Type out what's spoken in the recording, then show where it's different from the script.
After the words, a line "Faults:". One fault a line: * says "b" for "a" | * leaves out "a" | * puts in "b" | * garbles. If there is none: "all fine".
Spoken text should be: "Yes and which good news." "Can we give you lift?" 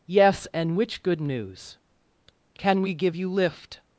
"Yes and which good news." "Can we give you lift?"
Faults:
all fine